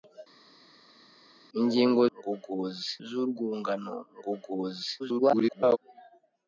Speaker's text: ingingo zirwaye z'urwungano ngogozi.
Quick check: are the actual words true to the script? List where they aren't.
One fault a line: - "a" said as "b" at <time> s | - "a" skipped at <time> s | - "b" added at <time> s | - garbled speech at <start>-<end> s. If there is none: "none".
- "zirwaye" said as "ngogozi" at 2.2 s
- garbled speech at 5.0-5.8 s